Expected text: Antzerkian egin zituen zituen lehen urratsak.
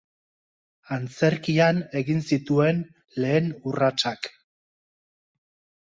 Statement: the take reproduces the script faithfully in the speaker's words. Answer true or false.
false